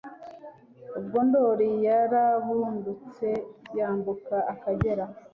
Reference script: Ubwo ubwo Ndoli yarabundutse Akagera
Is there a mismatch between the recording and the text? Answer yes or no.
yes